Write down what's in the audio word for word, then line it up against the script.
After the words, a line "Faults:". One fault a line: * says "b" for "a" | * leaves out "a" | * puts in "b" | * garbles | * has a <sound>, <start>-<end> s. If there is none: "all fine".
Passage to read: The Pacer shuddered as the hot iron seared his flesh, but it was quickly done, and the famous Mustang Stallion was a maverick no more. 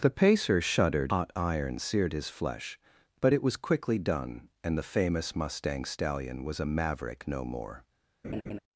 The Pacer shuddered hot iron seared his flesh, but it was quickly done, and the famous Mustang Stallion was a maverick no more.
Faults:
* leaves out "as the"
* has a laugh, 8.2-8.6 s